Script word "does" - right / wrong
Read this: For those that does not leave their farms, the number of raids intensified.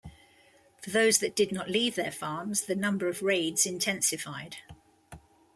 wrong